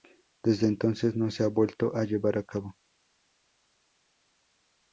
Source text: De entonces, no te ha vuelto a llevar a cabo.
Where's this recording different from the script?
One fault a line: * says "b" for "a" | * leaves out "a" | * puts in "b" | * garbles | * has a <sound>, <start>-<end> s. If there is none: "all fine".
* says "Desde" for "De"
* says "se" for "te"